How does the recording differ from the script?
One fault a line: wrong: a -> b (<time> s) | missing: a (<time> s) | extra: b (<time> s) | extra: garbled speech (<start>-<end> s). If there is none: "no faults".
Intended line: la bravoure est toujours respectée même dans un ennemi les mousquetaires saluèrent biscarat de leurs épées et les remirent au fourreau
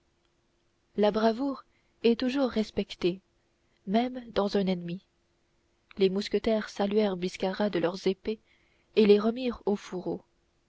no faults